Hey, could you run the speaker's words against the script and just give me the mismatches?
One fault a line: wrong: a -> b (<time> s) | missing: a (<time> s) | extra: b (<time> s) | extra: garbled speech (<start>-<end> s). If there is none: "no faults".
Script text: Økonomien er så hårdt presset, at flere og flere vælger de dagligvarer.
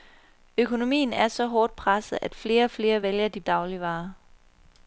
no faults